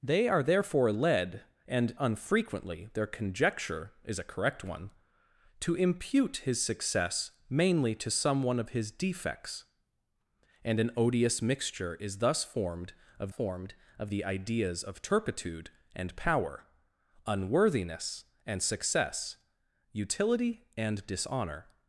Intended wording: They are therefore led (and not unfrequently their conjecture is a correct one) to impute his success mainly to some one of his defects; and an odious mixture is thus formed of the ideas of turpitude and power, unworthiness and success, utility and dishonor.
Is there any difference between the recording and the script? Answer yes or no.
yes